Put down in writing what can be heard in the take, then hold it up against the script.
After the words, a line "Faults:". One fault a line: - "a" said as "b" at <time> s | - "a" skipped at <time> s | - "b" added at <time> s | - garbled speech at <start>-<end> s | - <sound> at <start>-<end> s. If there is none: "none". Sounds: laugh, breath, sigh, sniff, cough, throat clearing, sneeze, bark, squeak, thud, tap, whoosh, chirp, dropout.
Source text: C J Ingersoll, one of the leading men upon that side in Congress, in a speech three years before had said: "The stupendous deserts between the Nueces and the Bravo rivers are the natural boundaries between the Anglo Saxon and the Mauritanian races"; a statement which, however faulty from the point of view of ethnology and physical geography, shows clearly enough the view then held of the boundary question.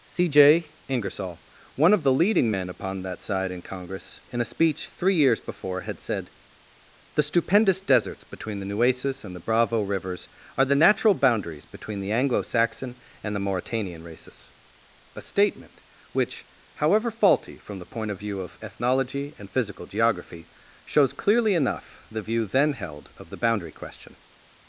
C J Ingersoll, one of the leading men upon that side in Congress, in a speech three years before had said: "The stupendous deserts between the Nueces and the Bravo rivers are the natural boundaries between the Anglo Saxon and the Mauritanian races"; a statement which, however faulty from the point of view of ethnology and physical geography, shows clearly enough the view then held of the boundary question.
Faults:
none